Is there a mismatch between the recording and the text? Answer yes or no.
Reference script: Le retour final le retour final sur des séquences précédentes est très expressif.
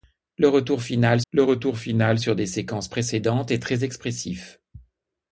no